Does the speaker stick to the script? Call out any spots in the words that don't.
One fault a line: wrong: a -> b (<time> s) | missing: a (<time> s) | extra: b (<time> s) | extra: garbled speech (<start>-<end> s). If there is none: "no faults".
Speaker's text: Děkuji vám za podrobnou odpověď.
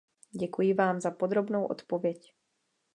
no faults